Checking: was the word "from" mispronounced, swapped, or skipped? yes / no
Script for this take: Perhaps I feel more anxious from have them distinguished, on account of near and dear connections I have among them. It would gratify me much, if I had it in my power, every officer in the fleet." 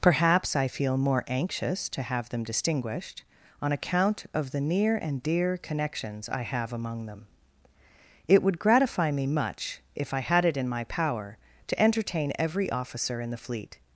yes